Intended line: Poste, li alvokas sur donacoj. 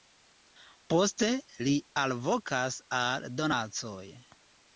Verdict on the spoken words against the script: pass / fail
fail